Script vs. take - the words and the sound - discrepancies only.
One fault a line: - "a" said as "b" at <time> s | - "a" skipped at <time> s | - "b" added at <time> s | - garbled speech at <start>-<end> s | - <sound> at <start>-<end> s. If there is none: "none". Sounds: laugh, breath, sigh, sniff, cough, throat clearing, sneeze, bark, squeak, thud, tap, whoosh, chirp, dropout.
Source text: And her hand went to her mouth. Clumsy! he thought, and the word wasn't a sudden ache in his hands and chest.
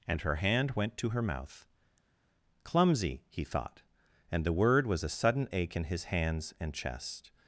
- "wasn't" said as "was" at 4.9 s